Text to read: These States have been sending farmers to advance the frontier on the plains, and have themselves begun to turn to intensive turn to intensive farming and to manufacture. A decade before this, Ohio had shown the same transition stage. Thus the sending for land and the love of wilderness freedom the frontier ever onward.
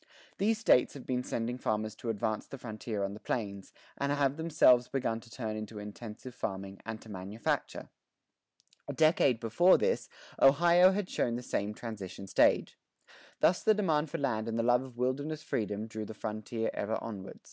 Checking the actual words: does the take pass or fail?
fail